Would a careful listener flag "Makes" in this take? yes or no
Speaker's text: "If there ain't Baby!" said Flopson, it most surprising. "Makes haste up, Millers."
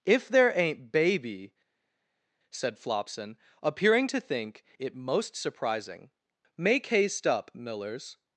yes